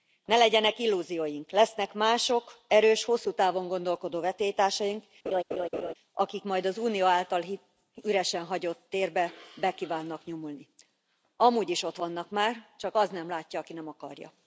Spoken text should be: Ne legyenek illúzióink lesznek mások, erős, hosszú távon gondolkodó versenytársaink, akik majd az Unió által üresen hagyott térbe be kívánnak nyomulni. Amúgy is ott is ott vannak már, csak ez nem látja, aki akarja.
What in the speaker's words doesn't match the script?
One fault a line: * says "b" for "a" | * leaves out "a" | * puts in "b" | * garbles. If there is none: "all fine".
* leaves out "is ott"
* says "az" for "ez"
* puts in "nem"